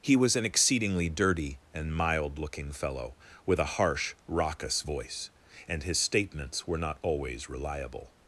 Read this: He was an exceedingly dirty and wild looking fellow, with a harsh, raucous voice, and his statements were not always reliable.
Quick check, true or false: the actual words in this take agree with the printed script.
false